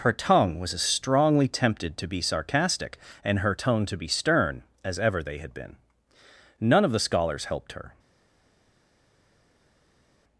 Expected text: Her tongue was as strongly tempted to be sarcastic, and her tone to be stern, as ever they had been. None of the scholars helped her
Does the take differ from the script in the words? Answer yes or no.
no